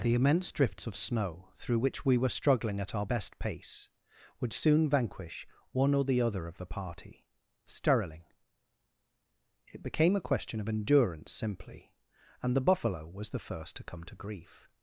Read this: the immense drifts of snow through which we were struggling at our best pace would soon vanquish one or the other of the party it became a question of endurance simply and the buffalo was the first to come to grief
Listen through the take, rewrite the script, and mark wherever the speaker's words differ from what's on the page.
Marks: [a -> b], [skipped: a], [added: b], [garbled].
the immense drifts of snow through which we were struggling at our best pace would soon vanquish one or the other of the party [added: sterling] it became a question of endurance simply and the buffalo was the first to come to grief